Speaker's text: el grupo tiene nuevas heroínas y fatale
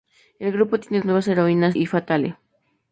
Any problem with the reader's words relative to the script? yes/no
no